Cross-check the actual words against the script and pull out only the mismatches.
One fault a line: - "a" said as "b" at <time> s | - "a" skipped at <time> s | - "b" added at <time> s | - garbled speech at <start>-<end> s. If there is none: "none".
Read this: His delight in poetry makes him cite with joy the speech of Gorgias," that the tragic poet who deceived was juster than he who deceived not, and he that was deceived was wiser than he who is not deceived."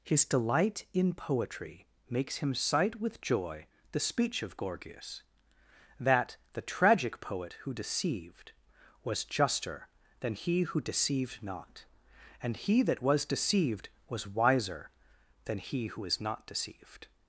none